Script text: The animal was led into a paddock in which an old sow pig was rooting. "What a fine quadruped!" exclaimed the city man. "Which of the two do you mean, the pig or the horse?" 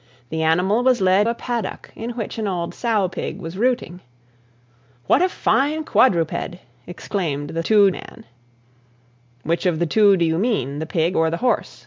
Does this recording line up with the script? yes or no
no